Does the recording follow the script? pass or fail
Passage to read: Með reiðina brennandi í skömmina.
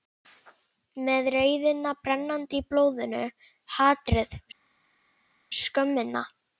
fail